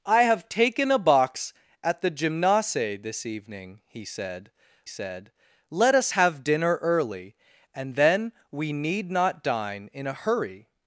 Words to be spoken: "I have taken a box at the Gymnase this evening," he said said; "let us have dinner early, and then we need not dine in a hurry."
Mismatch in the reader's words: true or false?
false